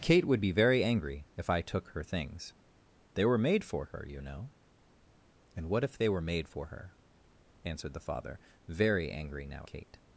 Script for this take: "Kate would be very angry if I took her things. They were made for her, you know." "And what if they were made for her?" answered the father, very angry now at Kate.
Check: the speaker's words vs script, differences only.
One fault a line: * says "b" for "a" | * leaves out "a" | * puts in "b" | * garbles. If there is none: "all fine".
* leaves out "at"